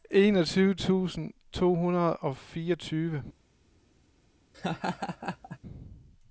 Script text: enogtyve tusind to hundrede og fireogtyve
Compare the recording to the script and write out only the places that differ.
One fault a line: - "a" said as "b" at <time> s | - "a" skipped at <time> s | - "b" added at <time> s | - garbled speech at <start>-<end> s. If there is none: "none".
none